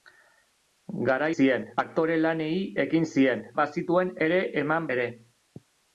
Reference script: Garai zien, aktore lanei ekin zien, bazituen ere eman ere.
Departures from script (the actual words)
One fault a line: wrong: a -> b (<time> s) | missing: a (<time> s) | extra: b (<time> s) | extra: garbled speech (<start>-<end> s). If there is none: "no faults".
no faults